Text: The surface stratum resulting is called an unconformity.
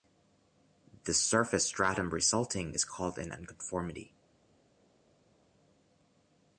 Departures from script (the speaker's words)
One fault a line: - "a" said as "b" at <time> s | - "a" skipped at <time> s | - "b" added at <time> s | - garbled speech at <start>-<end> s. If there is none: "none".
none